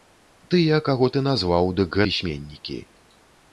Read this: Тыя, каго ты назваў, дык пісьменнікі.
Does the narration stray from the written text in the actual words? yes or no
no